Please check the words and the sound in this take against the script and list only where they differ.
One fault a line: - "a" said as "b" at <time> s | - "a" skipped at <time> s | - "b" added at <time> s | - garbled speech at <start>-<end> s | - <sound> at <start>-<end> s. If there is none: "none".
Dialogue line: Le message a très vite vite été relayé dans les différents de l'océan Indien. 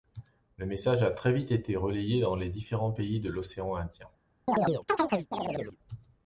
- "vite" skipped at 1.5 s
- "pays" added at 2.9 s
- chirp at 4.5-5.8 s